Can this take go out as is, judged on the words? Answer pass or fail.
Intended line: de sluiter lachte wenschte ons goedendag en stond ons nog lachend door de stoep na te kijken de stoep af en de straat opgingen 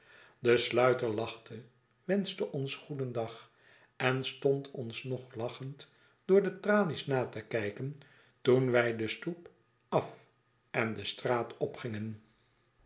fail